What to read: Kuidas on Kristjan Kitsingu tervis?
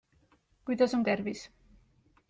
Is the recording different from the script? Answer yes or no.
yes